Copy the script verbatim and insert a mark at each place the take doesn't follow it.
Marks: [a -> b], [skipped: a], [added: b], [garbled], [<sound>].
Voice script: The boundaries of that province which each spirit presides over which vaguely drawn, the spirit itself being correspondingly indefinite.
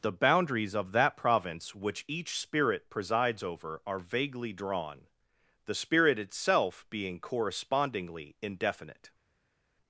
The boundaries of that province which each spirit presides over [which -> are] vaguely drawn, the spirit itself being correspondingly indefinite.